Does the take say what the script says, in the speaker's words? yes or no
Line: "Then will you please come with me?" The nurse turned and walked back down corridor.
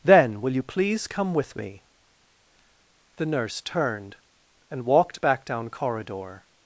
yes